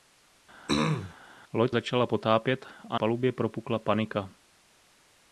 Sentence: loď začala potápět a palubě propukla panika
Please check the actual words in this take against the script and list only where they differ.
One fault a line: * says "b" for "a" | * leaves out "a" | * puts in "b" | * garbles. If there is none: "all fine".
all fine